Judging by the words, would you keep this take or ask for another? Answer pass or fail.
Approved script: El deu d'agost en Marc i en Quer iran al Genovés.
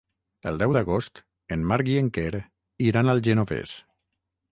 pass